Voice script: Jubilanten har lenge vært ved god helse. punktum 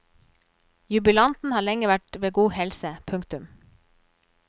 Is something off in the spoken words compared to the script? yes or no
no